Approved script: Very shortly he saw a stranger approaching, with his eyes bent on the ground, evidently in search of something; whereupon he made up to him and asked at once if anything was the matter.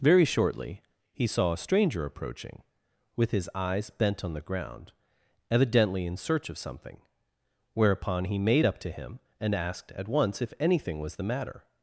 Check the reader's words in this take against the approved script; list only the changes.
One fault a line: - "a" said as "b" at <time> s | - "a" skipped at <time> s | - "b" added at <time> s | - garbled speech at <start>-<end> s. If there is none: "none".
none